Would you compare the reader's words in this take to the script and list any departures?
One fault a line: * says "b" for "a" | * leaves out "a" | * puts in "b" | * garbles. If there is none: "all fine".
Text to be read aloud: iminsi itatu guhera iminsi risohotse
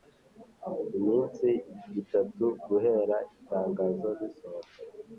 * says "itangazo" for "iminsi"